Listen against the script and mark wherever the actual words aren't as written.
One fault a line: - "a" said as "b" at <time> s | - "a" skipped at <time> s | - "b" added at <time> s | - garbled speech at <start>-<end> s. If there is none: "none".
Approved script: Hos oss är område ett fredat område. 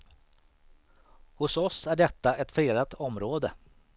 - "område" said as "detta" at 1.9 s